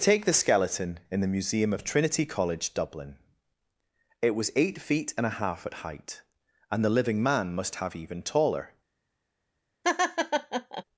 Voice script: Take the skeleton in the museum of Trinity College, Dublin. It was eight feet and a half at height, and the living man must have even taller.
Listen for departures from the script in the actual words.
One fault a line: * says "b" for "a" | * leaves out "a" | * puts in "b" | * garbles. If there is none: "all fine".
all fine